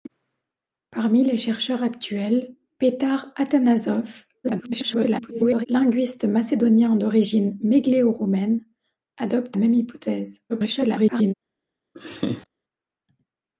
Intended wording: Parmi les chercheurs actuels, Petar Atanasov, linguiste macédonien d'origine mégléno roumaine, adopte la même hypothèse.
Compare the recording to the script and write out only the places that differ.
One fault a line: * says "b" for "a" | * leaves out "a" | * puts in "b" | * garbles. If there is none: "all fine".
* garbles
* leaves out "la"
* garbles